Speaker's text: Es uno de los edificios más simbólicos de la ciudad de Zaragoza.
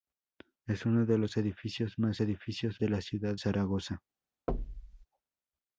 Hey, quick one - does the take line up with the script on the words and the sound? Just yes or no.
no